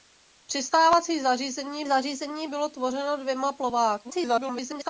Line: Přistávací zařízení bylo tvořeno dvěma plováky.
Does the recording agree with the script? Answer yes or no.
no